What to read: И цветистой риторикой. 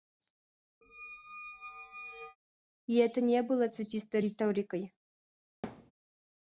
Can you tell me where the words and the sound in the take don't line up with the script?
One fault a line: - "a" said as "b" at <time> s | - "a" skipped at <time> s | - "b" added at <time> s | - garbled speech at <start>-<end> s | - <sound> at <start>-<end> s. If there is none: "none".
- squeak at 0.8-2.4 s
- "это не было" added at 3.0 s
- thud at 5.6-5.9 s